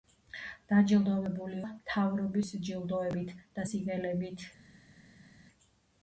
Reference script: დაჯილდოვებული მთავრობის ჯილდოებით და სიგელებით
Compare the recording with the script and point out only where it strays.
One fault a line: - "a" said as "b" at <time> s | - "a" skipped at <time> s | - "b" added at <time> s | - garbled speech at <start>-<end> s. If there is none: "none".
none